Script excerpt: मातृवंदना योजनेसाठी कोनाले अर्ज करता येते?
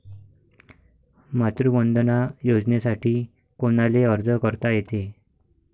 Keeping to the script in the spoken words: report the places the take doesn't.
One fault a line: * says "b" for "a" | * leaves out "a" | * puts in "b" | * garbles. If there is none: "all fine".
all fine